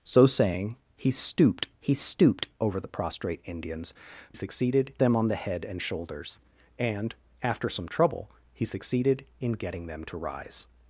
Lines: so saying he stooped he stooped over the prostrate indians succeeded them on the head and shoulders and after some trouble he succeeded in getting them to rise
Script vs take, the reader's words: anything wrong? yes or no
no